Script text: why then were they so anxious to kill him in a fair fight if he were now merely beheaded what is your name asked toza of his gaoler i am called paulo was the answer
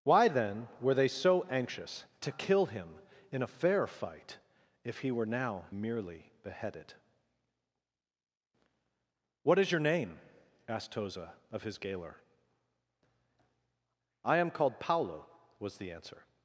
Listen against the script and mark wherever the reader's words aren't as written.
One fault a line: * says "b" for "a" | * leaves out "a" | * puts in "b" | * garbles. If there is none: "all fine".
all fine